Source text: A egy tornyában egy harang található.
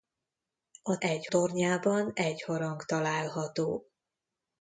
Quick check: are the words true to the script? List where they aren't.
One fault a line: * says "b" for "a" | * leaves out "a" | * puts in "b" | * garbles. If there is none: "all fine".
all fine